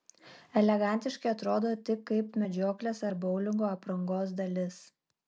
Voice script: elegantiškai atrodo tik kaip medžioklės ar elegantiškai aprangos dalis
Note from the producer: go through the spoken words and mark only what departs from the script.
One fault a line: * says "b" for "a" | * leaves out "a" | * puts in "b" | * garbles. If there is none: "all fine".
* says "boulingo" for "elegantiškai"